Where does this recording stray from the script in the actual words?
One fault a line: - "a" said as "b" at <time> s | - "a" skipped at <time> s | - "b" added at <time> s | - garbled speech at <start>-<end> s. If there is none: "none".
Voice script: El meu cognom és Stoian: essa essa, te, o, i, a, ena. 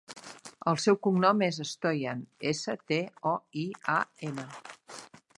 - "meu" said as "seu" at 0.8 s
- "essa" skipped at 2.8 s